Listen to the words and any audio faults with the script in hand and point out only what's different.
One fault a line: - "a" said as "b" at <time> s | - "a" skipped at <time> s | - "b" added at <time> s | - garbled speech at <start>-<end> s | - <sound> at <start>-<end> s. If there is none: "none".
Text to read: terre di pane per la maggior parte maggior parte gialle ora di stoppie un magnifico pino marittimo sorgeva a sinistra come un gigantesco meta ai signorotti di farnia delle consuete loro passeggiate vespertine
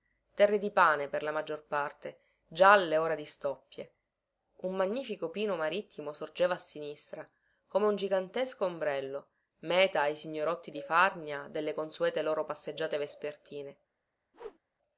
- "maggior parte" skipped at 2.2 s
- "ombrello" added at 8.7 s
- whoosh at 14.3-14.6 s